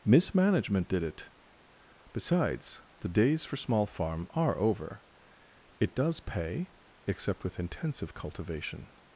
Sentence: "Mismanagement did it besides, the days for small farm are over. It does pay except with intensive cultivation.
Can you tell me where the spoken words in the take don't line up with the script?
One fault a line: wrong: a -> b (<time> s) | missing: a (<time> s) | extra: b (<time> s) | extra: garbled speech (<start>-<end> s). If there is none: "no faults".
no faults